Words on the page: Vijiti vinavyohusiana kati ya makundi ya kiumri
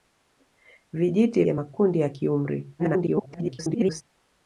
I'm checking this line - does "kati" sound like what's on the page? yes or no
no